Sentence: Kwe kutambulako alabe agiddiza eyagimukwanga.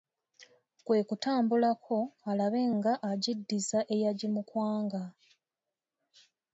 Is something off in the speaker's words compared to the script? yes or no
yes